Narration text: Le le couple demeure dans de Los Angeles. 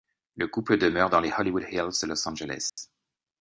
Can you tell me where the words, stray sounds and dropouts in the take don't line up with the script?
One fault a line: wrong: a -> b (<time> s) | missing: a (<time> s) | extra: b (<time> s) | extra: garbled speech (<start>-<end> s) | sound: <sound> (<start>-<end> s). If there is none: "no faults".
missing: le (0.5 s)
extra: les Hollywood Hills (1.2 s)
sound: dropout (2.7-2.8 s)